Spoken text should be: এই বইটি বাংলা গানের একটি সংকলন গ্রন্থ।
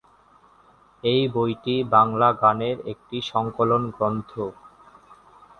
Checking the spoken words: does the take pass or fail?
pass